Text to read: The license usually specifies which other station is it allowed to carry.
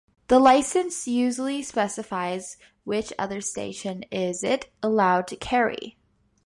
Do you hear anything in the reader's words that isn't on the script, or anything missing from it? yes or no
no